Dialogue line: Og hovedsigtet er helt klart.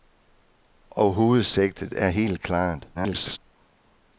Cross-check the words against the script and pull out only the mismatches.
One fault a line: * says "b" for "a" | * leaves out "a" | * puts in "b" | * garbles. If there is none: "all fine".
* garbles